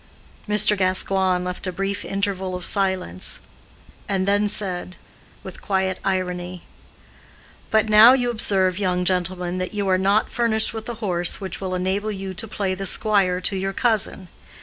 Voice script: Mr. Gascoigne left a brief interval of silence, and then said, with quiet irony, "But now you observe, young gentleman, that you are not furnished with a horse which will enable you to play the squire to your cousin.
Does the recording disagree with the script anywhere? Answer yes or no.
no